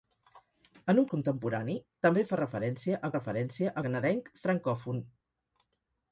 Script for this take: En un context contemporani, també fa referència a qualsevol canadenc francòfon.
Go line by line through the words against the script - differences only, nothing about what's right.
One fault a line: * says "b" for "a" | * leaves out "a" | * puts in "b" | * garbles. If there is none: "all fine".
* leaves out "context"
* says "referència" for "qualsevol"